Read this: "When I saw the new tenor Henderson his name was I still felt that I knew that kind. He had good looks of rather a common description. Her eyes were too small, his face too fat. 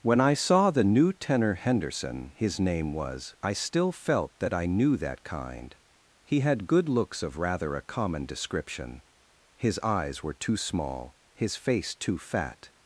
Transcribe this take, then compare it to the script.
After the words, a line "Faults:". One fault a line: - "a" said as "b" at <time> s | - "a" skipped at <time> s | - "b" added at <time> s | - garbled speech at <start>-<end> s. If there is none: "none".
"When I saw the new tenor Henderson his name was I still felt that I knew that kind. He had good looks of rather a common description. His eyes were too small, his face too fat.
Faults:
- "Her" said as "His" at 9.6 s